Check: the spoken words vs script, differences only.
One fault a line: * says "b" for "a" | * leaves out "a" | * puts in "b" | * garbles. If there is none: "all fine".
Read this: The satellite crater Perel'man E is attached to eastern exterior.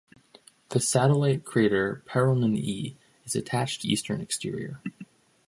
all fine